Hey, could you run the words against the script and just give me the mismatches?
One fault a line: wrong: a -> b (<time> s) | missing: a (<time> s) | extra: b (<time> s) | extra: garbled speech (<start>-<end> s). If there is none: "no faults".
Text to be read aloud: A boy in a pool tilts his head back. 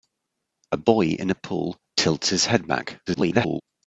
extra: garbled speech (3.1-3.6 s)